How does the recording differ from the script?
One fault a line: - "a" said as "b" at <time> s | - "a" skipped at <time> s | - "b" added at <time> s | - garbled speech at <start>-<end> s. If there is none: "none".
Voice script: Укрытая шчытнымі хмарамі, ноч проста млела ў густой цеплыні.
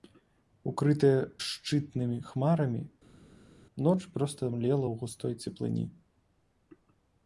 none